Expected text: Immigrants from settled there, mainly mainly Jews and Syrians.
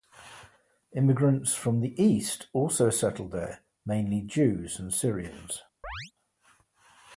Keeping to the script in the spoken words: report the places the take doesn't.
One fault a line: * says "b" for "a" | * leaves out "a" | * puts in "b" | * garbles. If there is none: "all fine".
* puts in "the East also"
* leaves out "mainly"